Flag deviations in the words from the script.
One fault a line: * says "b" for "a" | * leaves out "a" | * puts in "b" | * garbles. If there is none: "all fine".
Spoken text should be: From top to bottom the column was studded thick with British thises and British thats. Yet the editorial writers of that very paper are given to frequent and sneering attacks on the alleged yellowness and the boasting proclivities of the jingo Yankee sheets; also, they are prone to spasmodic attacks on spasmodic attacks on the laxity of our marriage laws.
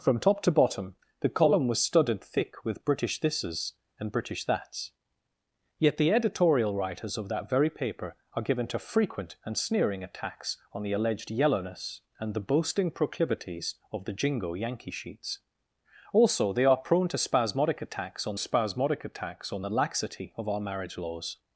all fine